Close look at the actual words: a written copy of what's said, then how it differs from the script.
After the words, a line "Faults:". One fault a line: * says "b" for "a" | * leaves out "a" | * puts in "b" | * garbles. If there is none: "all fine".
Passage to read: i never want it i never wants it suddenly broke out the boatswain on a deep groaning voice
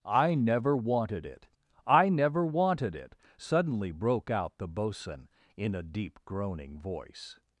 i never wanted it i never wanted it suddenly broke out the boatswain in a deep groaning voice
Faults:
* says "wanted" for "want"
* says "wanted" for "wants"
* says "in" for "on"